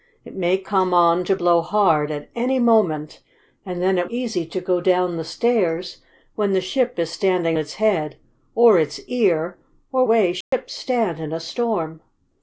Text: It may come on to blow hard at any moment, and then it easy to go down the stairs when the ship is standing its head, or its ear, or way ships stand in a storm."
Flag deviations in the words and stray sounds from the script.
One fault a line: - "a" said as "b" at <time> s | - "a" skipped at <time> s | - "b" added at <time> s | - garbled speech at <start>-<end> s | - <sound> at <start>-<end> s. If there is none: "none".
- dropout at 10.4-10.5 s